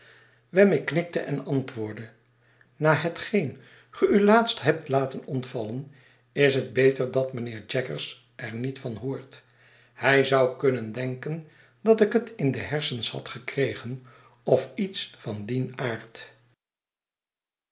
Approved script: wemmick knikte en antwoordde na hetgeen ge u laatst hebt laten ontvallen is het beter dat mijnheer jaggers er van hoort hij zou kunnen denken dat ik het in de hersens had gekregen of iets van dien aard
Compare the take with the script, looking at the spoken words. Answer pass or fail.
fail